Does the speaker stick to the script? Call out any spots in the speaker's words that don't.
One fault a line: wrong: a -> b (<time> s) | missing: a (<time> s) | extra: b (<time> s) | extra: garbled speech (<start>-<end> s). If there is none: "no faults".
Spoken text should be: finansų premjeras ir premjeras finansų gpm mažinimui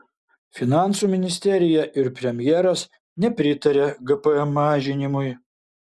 wrong: premjeras -> ministerija (1.1 s)
wrong: finansų -> nepritaria (3.2 s)